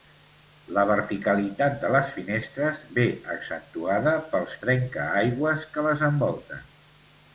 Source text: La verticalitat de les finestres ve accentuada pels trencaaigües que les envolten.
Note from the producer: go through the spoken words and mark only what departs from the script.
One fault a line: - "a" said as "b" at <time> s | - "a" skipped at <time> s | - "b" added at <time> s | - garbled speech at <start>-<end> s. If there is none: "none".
none